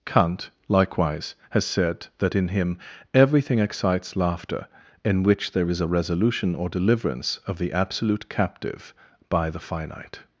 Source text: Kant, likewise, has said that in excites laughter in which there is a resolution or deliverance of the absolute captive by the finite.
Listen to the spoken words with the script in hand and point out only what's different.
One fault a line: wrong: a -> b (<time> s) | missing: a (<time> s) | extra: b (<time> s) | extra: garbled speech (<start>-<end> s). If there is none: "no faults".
extra: him everything (2.5 s)